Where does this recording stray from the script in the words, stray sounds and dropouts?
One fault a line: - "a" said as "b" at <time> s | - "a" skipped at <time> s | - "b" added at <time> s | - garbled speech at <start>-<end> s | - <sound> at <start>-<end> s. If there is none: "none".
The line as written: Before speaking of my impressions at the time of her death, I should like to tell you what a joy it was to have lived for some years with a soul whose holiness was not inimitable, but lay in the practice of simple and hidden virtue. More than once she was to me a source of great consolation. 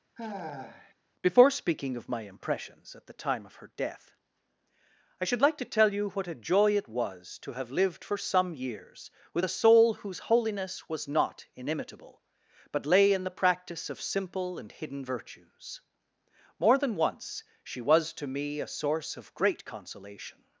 - sigh at 0.2-0.9 s
- "virtue" said as "virtues" at 15.0 s